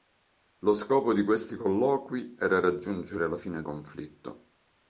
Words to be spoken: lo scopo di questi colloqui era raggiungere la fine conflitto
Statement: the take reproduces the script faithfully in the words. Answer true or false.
true